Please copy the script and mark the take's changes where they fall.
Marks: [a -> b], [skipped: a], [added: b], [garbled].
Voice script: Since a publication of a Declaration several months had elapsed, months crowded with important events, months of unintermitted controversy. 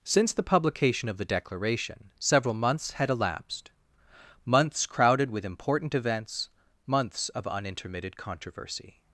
Since [a -> the] publication of [a -> the] Declaration several months had elapsed, months crowded with important events, months of unintermitted controversy.